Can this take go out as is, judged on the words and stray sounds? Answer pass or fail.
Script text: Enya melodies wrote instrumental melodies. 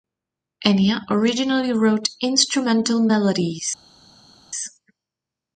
fail